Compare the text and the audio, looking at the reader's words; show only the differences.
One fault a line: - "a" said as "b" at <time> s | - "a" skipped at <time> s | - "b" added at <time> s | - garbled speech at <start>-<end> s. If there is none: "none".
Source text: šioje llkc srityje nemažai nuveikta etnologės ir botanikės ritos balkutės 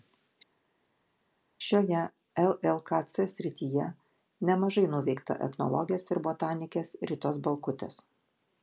none